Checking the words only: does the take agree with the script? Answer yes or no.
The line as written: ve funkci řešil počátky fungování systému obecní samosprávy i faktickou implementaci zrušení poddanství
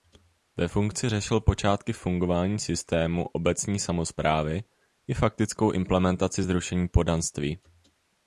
yes